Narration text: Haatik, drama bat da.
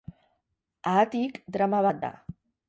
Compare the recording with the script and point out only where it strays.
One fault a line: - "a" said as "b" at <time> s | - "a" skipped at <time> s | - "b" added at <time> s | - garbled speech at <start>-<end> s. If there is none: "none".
none